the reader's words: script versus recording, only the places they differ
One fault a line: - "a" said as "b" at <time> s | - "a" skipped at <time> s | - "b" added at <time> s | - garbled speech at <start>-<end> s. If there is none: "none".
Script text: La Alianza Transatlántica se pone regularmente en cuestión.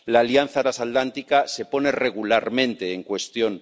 none